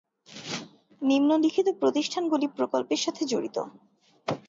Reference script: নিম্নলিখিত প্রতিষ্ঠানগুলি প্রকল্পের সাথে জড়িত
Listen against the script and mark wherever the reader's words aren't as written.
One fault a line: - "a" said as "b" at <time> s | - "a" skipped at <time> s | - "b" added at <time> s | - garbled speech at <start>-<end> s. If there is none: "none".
none